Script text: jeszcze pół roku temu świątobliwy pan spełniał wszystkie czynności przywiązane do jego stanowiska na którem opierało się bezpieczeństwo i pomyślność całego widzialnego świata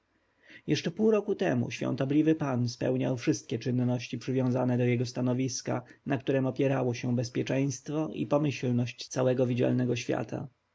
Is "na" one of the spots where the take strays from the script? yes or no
no